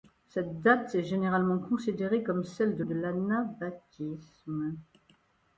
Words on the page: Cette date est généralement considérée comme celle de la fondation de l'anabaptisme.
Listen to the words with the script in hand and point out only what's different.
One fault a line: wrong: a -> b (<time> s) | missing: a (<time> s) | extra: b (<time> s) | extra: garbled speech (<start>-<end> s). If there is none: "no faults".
missing: la fondation (2.8 s)